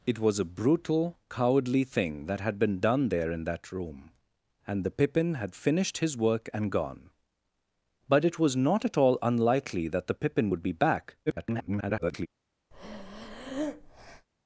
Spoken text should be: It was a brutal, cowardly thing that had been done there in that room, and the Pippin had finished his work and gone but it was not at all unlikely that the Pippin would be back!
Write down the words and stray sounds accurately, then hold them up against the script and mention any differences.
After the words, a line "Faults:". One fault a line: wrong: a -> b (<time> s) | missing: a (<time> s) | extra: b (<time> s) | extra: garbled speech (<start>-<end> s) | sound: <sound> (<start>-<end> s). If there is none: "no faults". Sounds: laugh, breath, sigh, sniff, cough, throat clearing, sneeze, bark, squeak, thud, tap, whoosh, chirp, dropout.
It was a brutal, cowardly thing that had been done there in that room, and the Pippin had finished his work and gone but it was not at all unlikely that the Pippin would be back! [garbled]
Faults:
extra: garbled speech (11.3-12.3 s)
sound: breath (12.7-14.3 s)